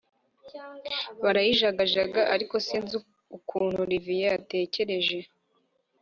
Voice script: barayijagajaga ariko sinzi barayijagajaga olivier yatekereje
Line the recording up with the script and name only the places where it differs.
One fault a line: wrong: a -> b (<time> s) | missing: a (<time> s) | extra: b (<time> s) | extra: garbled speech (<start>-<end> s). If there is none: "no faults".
wrong: barayijagajaga -> ukuntu (3.4 s)